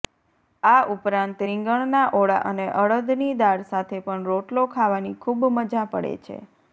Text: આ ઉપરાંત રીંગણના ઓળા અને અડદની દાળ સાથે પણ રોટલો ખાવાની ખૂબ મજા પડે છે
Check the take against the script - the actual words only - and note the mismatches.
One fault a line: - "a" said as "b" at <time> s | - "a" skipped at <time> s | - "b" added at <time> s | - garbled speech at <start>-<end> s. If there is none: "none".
none